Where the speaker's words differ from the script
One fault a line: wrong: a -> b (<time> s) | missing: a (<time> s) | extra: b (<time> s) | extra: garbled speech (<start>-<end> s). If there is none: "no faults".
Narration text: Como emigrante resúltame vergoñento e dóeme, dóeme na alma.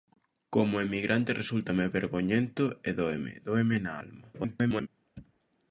extra: garbled speech (4.3-4.9 s)